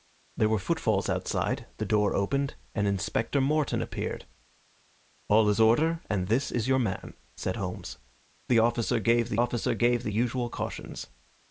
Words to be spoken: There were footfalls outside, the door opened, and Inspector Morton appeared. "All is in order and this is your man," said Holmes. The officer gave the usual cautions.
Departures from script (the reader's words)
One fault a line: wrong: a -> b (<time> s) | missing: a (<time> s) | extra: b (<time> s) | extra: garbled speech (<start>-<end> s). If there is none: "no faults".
extra: officer gave the (9.4 s)